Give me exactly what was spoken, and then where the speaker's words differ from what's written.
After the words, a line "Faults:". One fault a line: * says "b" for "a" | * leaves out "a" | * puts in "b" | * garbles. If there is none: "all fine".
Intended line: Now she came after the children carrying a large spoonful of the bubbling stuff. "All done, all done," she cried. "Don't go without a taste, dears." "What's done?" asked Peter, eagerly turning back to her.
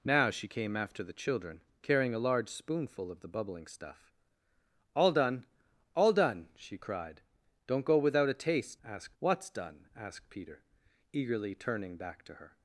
Now she came after the children carrying a large spoonful of the bubbling stuff. "All done, all done," she cried. "Don't go without a taste, asked." "What's done?" asked Peter, eagerly turning back to her.
Faults:
* says "asked" for "dears"